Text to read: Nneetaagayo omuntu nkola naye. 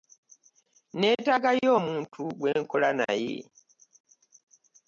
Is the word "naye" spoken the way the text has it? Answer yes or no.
yes